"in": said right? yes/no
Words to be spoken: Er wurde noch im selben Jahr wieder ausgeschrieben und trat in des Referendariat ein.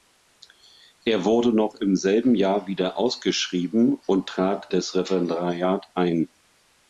no